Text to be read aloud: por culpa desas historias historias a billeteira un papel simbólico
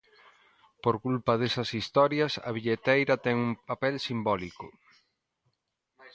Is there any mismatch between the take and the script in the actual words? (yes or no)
yes